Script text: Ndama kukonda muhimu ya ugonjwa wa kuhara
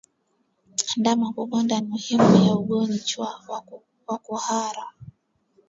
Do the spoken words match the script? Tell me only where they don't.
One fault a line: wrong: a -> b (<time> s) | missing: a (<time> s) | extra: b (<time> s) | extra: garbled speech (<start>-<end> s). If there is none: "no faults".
no faults